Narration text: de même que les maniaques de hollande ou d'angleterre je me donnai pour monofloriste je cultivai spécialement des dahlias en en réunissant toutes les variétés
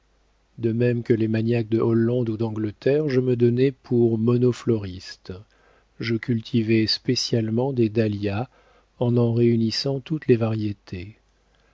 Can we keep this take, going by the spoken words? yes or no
yes